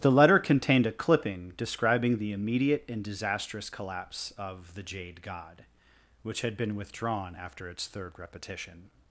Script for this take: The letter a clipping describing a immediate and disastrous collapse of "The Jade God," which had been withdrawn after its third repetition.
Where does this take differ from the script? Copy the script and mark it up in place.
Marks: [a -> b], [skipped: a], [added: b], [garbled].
The letter [added: contained] a clipping describing [a -> the] immediate and disastrous collapse of "The Jade God," which had been withdrawn after its third repetition.